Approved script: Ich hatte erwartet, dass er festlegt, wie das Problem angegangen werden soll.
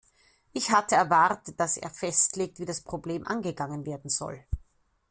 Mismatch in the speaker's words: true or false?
false